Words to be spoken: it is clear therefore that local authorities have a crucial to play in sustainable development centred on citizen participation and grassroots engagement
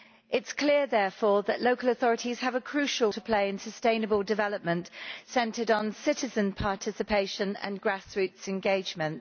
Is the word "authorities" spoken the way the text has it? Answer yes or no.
yes